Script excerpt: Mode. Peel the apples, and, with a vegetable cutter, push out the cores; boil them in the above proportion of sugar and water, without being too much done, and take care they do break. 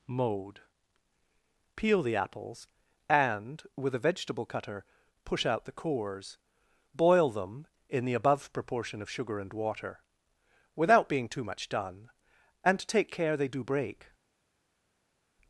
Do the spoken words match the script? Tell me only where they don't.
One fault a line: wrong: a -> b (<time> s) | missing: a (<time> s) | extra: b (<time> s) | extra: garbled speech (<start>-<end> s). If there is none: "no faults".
no faults